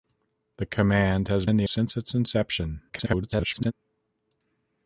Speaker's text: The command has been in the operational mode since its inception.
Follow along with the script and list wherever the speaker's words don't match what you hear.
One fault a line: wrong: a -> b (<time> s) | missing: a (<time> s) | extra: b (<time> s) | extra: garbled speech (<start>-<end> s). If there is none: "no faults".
missing: been (1.4 s)
missing: operational mode (1.7 s)
extra: garbled speech (2.9-3.7 s)